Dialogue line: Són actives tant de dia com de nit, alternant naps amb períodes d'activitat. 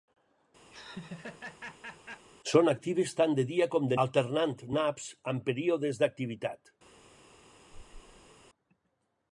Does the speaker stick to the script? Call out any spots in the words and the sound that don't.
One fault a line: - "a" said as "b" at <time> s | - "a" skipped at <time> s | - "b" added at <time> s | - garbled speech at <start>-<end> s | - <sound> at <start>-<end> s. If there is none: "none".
- laugh at 0.7-2.2 s
- "nit" skipped at 4.0 s
- squeak at 7.7-8.3 s